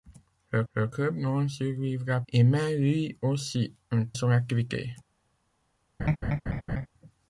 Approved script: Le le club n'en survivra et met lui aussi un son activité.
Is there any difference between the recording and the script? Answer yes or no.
no